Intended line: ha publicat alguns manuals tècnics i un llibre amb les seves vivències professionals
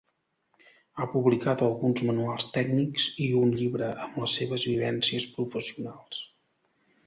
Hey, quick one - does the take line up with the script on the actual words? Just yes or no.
yes